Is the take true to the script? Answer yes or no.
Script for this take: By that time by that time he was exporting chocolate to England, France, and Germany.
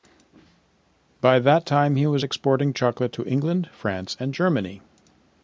no